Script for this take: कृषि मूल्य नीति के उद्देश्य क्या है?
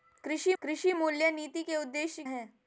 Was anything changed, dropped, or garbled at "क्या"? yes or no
yes